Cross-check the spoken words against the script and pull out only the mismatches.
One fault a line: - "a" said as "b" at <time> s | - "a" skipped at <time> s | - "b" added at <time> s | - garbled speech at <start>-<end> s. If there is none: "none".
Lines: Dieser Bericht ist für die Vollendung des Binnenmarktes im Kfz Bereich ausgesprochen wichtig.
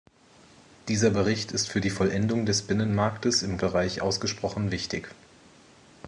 - "Kfz" skipped at 3.6 s